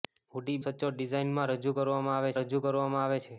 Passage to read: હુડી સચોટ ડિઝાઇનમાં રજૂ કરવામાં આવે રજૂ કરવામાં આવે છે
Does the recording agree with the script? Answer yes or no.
yes